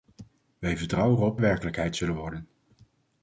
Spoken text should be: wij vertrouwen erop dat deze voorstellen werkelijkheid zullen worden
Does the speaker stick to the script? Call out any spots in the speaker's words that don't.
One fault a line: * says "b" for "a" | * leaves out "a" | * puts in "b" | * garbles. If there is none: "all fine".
* leaves out "dat deze voorstellen"